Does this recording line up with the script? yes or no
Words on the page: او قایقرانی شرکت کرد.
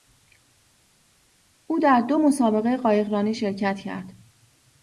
no